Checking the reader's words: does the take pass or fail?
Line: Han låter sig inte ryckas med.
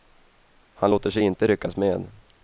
pass